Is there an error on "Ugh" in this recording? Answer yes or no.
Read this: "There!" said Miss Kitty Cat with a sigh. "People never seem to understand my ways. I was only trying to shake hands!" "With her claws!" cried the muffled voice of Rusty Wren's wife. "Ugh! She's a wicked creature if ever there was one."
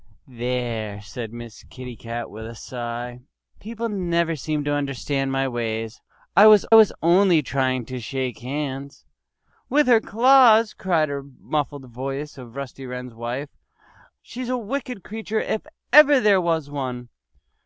yes